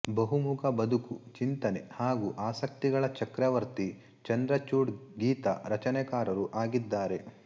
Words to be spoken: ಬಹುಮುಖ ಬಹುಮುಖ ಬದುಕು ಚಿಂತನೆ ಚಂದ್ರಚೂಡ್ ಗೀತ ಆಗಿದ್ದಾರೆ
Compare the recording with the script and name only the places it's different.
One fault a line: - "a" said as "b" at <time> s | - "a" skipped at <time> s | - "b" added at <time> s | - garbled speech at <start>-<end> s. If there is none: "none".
- "ಬಹುಮುಖ" skipped at 0.6 s
- "ಹಾಗೂ ಆಸಕ್ತಿಗಳ ಚಕ್ರವರ್ತಿ" added at 1.9 s
- "ರಚನೆಕಾರರೂ" added at 5.7 s